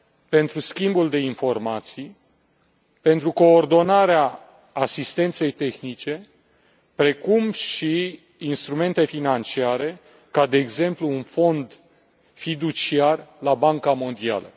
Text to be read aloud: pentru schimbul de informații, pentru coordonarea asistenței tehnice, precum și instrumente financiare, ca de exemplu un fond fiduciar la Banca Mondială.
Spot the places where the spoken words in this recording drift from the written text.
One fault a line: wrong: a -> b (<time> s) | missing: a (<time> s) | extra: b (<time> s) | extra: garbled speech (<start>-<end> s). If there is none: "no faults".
no faults